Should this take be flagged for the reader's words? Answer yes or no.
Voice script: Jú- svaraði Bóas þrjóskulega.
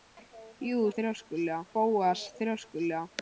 yes